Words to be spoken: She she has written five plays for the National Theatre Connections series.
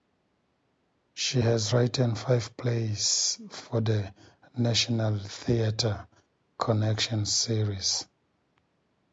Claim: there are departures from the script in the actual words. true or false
true